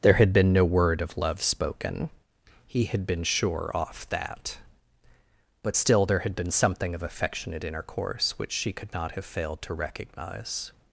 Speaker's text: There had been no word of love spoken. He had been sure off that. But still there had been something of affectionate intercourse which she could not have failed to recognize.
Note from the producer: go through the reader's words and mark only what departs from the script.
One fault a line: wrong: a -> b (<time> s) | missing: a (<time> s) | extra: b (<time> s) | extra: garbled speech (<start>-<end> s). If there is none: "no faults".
no faults